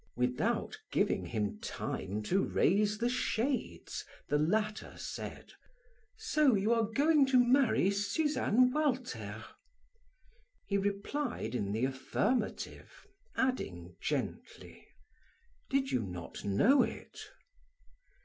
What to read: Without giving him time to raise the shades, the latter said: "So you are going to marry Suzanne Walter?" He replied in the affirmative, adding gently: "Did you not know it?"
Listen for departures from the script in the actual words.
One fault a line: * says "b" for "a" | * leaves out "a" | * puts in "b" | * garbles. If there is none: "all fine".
all fine